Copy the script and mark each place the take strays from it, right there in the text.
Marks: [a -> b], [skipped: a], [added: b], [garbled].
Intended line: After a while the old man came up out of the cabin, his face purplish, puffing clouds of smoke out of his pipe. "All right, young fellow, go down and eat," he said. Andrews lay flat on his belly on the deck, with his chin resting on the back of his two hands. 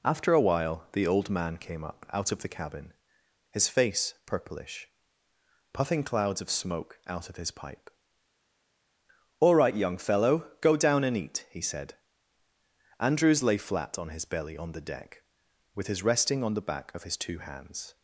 After a while the old man came up out of the cabin, his face purplish, puffing clouds of smoke out of his pipe. "All right, young fellow, go down and eat," he said. Andrews lay flat on his belly on the deck, with his [skipped: chin] resting on the back of his two hands.